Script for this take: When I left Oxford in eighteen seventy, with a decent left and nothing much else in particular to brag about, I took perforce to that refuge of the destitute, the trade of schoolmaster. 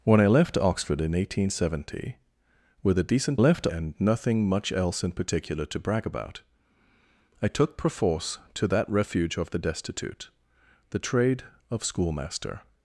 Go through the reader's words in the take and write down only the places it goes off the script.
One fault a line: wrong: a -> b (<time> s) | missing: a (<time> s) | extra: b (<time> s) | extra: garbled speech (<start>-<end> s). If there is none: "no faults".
no faults